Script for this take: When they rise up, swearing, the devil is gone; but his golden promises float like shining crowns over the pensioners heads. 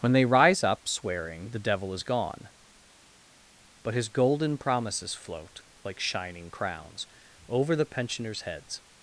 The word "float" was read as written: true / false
true